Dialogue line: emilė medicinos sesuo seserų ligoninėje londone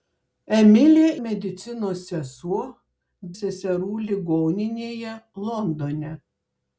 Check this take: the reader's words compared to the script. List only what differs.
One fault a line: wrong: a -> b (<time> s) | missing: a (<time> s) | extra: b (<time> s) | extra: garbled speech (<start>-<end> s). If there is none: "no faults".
no faults